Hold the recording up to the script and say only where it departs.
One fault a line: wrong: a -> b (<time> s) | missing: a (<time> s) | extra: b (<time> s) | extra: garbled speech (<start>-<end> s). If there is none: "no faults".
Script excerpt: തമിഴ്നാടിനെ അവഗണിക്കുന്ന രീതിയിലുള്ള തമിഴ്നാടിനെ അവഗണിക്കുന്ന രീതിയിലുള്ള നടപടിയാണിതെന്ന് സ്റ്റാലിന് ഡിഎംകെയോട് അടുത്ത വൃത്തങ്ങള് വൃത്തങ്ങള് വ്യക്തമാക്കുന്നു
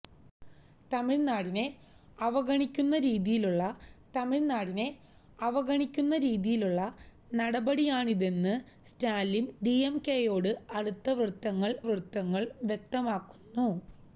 no faults